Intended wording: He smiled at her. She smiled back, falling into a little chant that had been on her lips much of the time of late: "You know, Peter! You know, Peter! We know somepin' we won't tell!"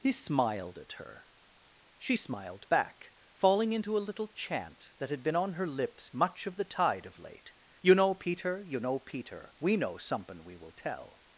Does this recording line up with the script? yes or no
no